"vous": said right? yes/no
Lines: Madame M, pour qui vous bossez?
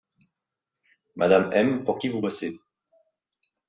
yes